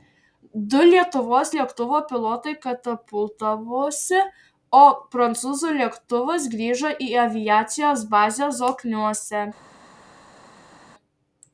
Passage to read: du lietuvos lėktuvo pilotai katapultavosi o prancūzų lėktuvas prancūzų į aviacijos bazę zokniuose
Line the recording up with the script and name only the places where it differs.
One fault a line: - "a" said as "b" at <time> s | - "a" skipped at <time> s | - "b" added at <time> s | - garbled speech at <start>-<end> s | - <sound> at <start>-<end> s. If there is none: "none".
- "prancūzų" said as "grįžo" at 6.5 s